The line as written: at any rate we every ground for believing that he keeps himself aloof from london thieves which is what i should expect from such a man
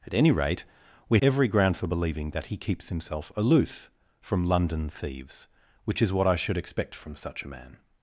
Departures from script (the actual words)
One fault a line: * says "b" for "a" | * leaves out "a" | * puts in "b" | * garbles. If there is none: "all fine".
all fine